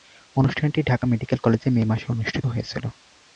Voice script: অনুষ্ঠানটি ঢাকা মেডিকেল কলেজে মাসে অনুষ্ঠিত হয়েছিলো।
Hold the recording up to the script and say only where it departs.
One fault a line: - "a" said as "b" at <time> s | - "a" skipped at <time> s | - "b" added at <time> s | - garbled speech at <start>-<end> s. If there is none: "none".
- "মে" added at 1.7 s